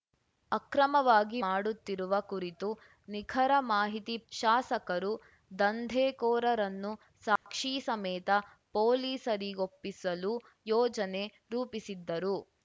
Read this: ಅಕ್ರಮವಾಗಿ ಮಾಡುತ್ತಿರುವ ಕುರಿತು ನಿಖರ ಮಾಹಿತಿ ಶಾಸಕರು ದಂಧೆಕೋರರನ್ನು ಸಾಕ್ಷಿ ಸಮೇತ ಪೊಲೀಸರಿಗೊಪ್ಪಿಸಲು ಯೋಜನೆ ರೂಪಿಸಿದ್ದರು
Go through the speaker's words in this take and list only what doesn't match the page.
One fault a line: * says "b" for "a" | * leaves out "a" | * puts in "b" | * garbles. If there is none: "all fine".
all fine